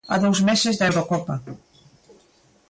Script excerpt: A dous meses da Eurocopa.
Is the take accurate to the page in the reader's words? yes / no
yes